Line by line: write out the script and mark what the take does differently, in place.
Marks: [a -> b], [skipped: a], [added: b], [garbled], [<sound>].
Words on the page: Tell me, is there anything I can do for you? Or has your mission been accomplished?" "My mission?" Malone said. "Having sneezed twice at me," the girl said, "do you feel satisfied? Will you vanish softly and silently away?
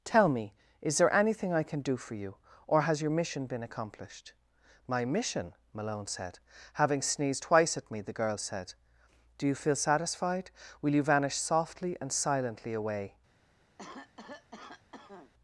Tell me, is there anything I can do for you? Or has your mission been accomplished?" "My mission?" Malone said. "Having sneezed twice at me," the girl said, "do you feel satisfied? Will you vanish softly and silently away? [cough]